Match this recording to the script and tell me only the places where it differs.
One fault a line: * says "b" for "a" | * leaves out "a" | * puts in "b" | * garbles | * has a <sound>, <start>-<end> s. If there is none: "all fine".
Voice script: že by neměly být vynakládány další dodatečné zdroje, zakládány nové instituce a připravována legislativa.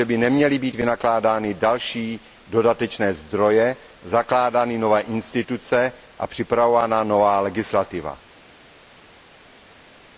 * puts in "nová"